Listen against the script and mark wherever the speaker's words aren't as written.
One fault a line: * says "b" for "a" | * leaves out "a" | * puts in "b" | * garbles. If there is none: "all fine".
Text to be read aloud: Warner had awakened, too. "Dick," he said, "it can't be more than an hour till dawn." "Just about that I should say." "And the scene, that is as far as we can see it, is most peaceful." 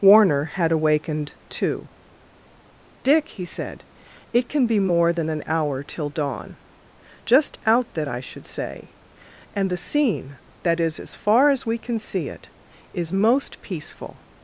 * says "can" for "can't"
* says "out" for "about"